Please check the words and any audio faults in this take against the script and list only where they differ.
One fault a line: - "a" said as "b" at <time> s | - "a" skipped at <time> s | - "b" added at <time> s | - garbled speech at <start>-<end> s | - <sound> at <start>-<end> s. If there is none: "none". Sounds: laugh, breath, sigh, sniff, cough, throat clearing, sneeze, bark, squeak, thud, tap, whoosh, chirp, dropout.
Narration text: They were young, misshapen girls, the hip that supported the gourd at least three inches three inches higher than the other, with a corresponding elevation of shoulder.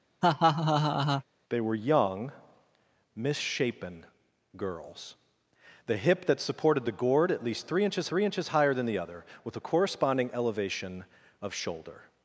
- laugh at 0.2-1.2 s